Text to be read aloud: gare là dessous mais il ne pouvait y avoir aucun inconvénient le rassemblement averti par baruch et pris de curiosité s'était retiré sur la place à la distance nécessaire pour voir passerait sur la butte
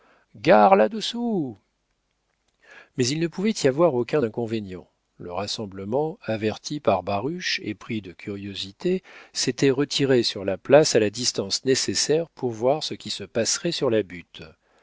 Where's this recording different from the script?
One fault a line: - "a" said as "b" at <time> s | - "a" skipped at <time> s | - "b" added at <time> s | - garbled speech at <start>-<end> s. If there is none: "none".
- "ce qui se" added at 12.8 s